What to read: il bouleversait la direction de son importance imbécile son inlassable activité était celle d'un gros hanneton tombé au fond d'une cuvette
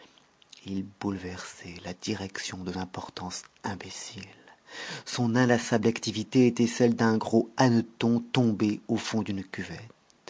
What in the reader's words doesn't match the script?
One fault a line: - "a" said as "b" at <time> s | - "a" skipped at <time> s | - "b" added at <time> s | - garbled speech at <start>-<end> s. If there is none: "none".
- "son" skipped at 2.7 s